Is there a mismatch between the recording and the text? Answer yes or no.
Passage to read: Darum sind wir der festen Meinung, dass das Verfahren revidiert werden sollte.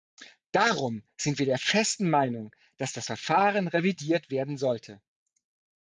no